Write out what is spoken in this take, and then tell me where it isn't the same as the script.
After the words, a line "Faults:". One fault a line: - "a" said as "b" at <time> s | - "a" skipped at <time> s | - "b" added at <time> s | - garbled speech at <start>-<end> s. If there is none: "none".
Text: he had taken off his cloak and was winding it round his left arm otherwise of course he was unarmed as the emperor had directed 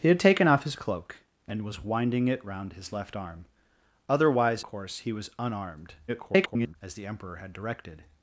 he had taken off his cloak and was winding it round his left arm otherwise course he was unarmed [garbled] as the emperor had directed
Faults:
- "of" skipped at 4.6 s
- garbled speech at 6.1-6.8 s